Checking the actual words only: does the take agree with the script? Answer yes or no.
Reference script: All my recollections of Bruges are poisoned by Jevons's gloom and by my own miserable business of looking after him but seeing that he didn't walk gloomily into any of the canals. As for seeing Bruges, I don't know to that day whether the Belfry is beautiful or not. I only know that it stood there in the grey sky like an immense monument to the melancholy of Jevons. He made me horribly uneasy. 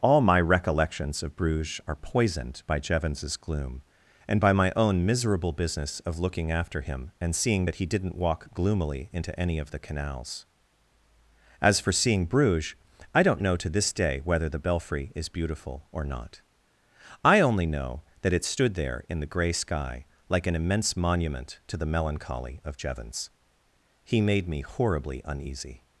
no